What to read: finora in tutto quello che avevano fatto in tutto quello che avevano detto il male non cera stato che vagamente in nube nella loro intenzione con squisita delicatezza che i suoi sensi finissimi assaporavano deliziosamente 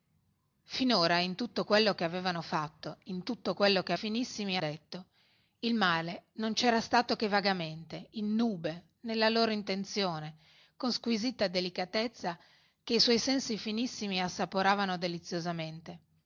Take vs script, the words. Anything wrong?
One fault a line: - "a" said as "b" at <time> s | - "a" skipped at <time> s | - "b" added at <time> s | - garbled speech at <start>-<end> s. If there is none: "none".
- "avevano" said as "finissimi" at 3.9 s